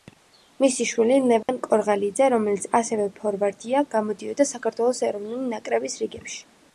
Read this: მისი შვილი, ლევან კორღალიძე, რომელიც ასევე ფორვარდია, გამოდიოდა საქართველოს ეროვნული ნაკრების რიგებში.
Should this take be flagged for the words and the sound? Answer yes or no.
yes